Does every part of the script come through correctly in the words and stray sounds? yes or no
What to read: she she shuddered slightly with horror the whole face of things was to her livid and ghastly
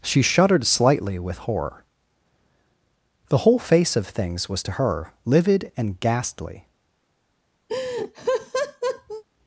no